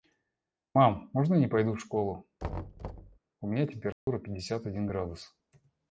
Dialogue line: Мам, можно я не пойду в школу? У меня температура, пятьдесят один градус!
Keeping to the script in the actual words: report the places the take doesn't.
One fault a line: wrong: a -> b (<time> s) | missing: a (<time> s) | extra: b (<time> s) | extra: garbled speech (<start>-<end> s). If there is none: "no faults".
no faults